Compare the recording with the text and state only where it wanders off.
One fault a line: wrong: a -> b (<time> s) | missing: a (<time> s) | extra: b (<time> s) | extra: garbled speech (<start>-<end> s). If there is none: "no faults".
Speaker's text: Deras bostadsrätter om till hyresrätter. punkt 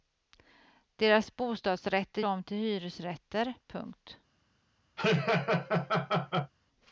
no faults